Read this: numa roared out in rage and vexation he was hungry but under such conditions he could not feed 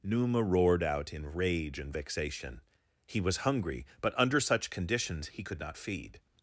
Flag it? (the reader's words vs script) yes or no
no